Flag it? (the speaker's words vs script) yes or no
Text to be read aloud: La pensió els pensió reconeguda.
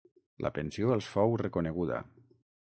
yes